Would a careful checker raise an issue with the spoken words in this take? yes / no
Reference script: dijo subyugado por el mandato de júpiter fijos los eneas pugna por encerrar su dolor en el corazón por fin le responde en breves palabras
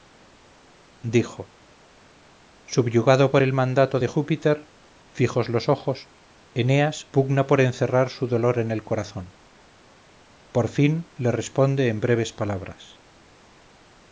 yes